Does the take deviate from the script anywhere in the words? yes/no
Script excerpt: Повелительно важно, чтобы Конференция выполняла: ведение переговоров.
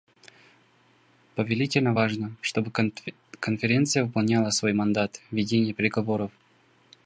yes